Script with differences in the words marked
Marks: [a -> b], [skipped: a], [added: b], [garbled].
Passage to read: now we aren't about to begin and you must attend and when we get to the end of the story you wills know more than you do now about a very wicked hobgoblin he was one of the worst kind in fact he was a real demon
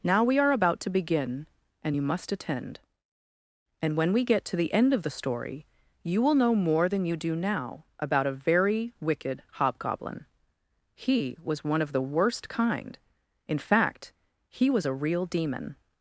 now we [aren't -> are] about to begin and you must attend and when we get to the end of the story you [wills -> will] know more than you do now about a very wicked hobgoblin he was one of the worst kind in fact he was a real demon